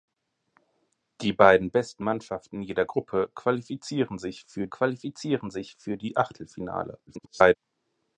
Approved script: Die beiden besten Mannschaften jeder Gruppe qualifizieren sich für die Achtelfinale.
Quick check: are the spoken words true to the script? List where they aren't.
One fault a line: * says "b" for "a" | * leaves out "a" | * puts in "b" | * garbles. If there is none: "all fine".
* puts in "qualifizieren sich für"
* garbles